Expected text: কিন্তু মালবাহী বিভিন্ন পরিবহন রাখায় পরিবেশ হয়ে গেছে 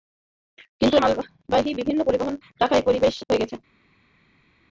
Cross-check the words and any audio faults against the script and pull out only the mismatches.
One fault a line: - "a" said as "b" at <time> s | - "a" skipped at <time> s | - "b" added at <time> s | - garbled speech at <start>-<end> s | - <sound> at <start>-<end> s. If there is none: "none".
none